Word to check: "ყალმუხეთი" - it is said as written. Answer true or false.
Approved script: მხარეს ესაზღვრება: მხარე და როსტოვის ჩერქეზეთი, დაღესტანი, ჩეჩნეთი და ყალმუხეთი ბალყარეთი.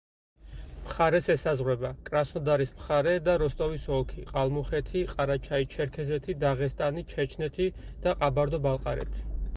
false